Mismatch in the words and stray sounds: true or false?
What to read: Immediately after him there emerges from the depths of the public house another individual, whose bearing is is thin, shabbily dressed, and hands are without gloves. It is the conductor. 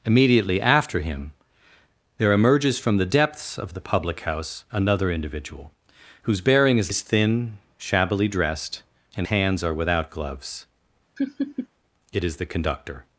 true